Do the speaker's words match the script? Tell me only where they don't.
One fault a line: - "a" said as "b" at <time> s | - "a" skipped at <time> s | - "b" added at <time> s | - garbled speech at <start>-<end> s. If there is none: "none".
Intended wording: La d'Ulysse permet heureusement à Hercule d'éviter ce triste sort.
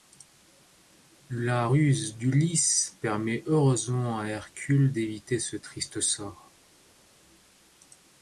- "ruse" added at 1.7 s